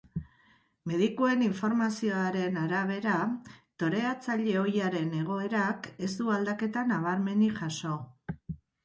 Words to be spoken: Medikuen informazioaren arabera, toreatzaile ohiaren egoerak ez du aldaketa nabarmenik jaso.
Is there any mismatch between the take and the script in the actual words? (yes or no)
no